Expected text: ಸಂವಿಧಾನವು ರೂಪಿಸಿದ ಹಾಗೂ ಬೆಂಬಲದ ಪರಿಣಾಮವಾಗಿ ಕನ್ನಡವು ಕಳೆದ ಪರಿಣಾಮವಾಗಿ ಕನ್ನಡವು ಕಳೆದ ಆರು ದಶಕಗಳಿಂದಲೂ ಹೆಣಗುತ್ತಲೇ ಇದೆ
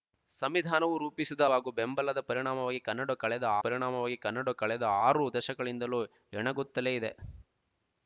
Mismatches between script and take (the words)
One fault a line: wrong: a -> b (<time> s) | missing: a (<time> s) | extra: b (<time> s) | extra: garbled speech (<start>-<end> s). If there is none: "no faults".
no faults